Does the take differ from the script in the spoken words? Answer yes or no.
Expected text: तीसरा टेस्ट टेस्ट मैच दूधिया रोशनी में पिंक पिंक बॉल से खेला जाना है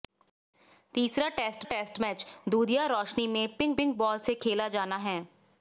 no